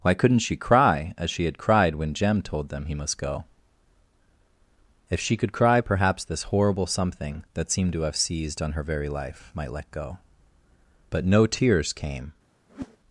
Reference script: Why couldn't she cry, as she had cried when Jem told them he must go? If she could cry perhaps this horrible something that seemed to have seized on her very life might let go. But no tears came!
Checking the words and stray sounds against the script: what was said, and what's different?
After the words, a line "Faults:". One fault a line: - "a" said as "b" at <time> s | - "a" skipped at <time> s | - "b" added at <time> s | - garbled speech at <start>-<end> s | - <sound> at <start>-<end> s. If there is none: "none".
Why couldn't she cry, as she had cried when Jem told them he must go? If she could cry perhaps this horrible something that seemed to have seized on her very life might let go. But no tears came!
Faults:
- whoosh at 12.7-13.0 s